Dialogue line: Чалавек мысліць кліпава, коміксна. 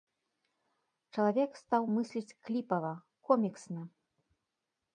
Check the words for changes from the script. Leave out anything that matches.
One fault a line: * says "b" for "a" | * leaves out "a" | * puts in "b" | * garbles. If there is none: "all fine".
* puts in "стаў"